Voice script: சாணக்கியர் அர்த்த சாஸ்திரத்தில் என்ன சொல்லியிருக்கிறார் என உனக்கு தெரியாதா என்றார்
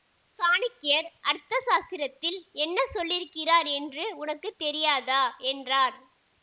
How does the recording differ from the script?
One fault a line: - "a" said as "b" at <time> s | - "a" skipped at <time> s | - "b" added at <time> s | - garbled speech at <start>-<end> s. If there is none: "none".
- "என" said as "என்று" at 3.8 s